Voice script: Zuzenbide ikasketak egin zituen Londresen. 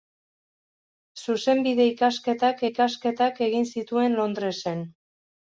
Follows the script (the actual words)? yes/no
no